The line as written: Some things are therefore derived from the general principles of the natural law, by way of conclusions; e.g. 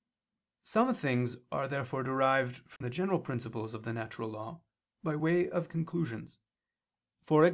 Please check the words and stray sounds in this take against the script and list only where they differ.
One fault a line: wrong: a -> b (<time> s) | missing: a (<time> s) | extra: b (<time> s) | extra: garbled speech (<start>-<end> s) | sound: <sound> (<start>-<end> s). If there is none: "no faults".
sound: dropout (2.8-2.8 s)